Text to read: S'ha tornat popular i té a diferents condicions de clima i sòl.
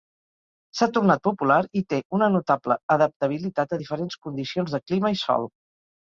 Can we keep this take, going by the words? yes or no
no